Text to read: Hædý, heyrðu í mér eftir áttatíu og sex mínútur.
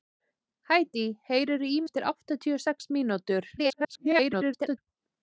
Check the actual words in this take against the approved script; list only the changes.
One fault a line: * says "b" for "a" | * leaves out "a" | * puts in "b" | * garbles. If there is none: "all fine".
* leaves out "mér"
* garbles